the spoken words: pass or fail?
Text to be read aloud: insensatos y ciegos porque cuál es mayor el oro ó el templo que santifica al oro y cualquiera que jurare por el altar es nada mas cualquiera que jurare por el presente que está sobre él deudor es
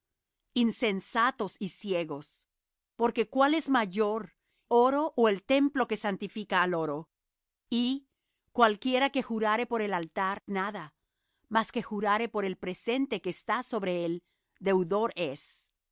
fail